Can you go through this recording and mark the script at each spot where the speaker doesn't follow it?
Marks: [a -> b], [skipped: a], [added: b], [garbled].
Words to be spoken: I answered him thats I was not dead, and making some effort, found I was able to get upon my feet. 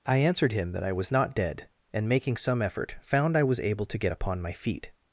I answered him [thats -> that] I was not dead, and making some effort, found I was able to get upon my feet.